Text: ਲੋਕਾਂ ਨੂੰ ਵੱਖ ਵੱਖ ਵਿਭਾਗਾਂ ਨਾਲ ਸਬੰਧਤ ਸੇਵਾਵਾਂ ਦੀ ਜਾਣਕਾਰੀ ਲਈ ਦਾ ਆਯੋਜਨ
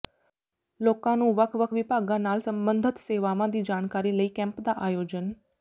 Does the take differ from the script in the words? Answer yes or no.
yes